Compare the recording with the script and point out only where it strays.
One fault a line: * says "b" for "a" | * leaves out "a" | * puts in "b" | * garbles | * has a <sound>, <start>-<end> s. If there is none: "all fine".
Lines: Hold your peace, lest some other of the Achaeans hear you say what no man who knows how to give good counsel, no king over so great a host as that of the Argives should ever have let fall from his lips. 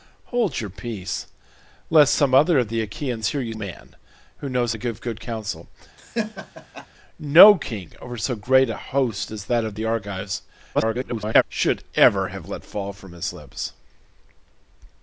* leaves out "say what no"
* leaves out "how"
* has a laugh, 6.0-6.9 s
* garbles